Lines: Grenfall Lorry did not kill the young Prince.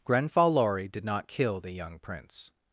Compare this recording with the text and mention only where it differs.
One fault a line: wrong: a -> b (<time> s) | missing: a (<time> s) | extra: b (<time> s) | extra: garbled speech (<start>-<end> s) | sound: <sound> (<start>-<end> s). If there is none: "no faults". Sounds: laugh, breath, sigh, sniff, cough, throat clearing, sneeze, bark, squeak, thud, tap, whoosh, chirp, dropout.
no faults